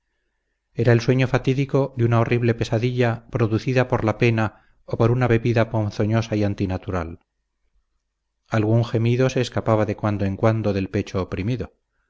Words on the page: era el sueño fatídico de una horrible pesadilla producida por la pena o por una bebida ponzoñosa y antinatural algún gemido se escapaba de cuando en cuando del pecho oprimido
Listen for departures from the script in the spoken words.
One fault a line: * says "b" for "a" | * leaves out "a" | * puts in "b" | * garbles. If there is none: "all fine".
all fine